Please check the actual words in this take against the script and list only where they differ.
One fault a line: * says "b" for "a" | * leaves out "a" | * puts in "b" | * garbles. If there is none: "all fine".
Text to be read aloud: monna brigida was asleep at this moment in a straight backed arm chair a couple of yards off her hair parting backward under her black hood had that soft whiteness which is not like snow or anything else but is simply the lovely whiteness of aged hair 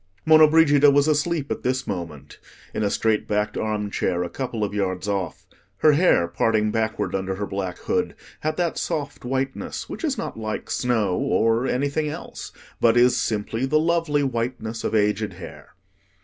all fine